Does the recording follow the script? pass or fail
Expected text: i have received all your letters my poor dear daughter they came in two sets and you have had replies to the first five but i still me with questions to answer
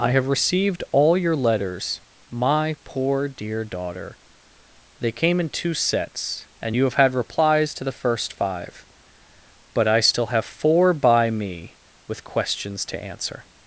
fail